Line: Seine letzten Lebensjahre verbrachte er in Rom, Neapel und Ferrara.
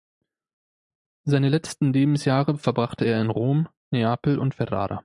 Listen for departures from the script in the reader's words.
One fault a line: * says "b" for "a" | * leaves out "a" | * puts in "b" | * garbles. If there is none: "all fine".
all fine